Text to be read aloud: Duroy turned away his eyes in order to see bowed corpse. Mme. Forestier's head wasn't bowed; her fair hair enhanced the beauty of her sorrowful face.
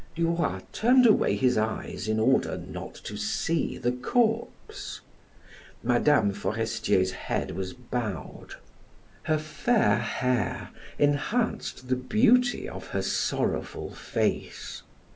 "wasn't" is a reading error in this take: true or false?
true